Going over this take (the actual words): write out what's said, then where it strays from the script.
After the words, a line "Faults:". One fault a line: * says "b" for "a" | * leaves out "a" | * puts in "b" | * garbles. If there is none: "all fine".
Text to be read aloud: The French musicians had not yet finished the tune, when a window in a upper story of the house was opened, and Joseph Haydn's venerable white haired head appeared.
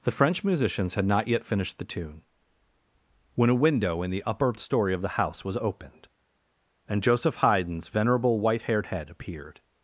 The French musicians had not yet finished the tune, when a window in the upper story of the house was opened, and Joseph Haydn's venerable white haired head appeared.
Faults:
* says "the" for "a"